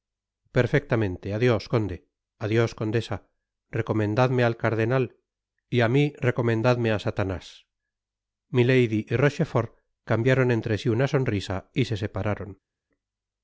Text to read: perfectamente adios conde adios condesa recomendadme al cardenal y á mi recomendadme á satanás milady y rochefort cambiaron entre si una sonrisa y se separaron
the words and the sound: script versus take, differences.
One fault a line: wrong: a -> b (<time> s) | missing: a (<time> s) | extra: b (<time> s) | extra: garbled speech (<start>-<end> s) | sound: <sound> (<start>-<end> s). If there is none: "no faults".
no faults